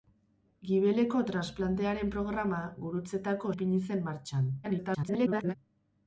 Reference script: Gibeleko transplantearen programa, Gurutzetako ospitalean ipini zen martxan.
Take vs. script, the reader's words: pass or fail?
fail